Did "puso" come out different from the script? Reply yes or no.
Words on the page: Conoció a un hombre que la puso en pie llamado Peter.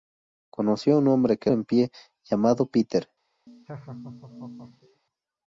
yes